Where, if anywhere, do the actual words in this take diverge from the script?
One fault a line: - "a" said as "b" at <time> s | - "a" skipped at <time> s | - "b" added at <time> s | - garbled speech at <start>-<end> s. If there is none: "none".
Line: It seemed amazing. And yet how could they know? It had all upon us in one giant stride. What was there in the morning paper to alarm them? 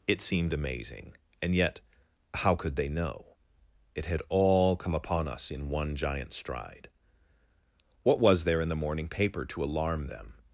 - "come" added at 4.8 s